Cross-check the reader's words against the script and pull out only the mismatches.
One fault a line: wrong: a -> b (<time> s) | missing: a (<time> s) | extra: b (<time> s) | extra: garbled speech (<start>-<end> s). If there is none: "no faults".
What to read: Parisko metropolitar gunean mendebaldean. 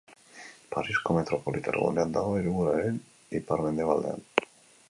extra: dago hiriburuaren ipar (2.2 s)